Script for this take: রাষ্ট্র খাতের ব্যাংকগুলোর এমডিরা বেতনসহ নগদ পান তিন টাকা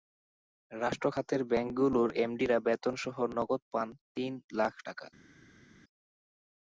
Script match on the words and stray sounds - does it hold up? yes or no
no